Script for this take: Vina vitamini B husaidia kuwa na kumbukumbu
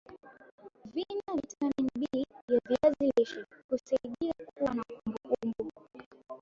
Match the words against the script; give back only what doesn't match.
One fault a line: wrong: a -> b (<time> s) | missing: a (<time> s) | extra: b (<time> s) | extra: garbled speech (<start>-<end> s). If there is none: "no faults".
extra: ya viazi lishe (2.5 s)